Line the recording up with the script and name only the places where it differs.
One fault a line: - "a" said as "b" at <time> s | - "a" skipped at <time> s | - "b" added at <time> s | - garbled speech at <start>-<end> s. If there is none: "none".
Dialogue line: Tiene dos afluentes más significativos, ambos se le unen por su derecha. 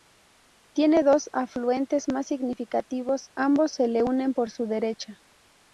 none